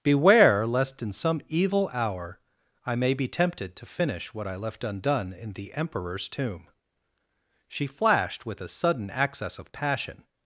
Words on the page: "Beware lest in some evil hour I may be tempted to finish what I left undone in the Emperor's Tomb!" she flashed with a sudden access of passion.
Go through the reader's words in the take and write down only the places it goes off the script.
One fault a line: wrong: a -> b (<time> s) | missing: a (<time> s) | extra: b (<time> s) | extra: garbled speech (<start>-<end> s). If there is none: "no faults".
no faults